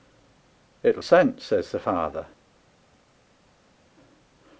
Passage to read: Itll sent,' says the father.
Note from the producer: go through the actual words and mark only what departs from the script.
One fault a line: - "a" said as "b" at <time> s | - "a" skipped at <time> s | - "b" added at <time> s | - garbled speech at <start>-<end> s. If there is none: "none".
none